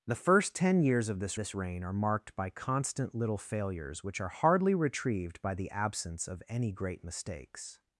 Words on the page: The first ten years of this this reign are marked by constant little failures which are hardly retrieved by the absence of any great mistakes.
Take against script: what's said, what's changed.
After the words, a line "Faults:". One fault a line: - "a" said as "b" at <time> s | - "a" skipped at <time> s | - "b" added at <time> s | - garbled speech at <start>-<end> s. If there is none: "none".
The first ten years of this this reign are marked by constant little failures which are hardly retrieved by the absence of any great mistakes.
Faults:
none